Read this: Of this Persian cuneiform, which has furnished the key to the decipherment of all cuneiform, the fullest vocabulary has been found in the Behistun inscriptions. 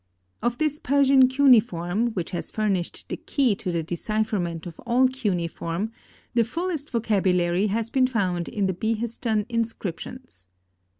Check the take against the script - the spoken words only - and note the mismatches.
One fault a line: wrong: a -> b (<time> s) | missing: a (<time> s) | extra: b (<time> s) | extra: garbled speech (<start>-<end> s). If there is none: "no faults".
no faults